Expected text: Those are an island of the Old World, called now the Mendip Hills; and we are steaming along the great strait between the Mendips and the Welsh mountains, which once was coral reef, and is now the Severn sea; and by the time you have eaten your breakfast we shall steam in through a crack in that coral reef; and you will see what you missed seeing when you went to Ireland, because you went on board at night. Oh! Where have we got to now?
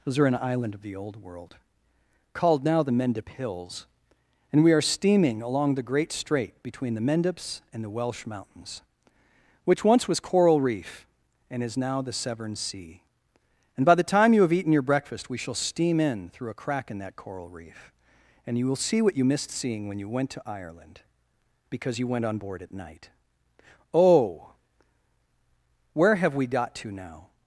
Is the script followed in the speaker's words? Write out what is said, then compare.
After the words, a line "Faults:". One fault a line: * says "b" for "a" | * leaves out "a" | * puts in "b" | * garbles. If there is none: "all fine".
Those are an island of the Old World, called now the Mendip Hills; and we are steaming along the great strait between the Mendips and the Welsh mountains, which once was coral reef, and is now the Severn sea; and by the time you have eaten your breakfast we shall steam in through a crack in that coral reef; and you will see what you missed seeing when you went to Ireland, because you went on board at night. Oh! Where have we got to now?
Faults:
all fine